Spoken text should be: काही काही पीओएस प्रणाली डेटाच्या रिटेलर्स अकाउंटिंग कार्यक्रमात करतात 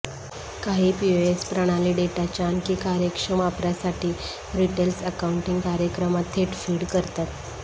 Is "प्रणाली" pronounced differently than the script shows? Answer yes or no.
no